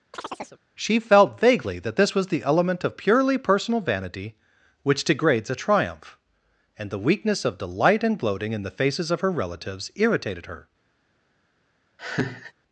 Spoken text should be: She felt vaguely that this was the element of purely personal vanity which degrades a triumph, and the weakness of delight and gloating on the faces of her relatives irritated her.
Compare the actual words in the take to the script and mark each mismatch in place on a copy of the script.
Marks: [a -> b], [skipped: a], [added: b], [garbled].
She felt vaguely that this was the element of purely personal vanity which degrades a triumph, and the weakness of delight and gloating [on -> in] the faces of her relatives irritated her.